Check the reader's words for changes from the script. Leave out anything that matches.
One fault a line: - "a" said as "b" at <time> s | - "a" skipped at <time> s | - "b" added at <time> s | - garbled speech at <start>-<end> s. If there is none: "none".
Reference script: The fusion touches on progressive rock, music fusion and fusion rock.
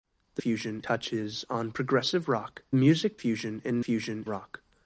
none